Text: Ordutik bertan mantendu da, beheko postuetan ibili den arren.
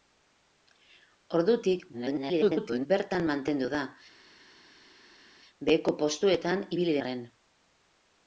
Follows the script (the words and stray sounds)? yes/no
no